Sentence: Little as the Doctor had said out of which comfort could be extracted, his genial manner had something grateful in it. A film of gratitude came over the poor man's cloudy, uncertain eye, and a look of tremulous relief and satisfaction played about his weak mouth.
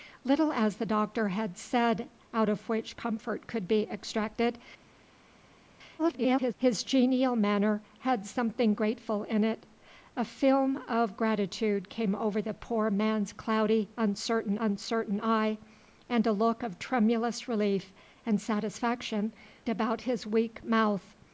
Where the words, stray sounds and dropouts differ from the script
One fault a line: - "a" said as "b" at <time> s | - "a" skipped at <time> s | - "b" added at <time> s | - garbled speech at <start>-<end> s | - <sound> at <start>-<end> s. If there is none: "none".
- garbled speech at 6.0-6.5 s
- "uncertain" added at 14.6 s
- "played" skipped at 19.3 s